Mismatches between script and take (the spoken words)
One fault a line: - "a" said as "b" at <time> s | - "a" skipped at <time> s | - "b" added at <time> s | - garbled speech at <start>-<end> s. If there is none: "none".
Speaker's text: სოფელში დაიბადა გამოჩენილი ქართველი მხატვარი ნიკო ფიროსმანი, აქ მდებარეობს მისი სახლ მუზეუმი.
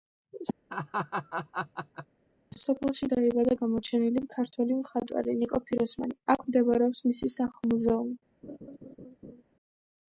none